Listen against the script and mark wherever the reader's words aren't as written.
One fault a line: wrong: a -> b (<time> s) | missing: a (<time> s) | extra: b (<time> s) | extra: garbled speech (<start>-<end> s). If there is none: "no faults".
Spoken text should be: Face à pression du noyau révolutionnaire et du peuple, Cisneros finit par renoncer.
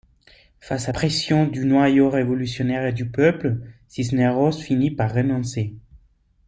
no faults